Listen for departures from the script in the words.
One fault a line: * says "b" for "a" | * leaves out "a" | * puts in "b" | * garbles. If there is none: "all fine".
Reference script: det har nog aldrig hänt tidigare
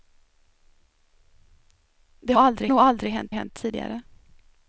* says "aldrig" for "har"
* puts in "hänt"